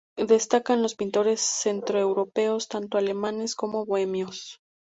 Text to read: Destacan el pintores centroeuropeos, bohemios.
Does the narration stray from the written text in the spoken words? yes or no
yes